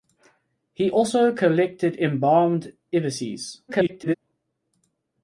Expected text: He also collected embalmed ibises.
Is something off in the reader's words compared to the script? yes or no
yes